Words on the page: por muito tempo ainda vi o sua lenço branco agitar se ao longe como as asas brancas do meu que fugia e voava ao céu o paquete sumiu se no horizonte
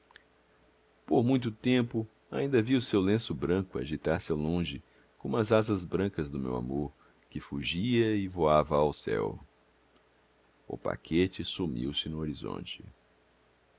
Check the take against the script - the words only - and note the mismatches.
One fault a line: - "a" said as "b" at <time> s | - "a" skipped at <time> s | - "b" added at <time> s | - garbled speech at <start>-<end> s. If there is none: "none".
- "sua" said as "seu" at 2.8 s
- "amor" added at 6.5 s